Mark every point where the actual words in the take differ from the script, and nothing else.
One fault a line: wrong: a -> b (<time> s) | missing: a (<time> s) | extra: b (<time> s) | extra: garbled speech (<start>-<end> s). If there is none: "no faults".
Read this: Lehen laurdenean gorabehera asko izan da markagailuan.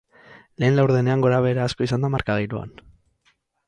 no faults